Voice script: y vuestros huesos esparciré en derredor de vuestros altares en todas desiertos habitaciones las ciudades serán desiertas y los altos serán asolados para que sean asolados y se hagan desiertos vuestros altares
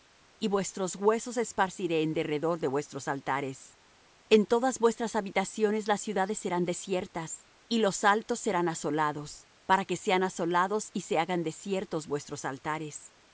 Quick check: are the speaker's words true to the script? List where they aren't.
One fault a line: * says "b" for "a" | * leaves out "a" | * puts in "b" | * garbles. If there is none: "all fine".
* says "vuestras" for "desiertos"